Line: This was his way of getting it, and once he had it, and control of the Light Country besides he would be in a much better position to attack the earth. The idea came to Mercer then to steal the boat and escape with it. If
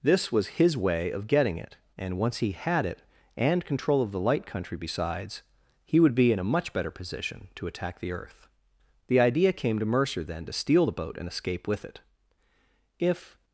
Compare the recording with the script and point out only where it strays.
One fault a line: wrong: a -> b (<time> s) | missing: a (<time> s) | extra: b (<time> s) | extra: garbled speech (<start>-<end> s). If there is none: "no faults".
no faults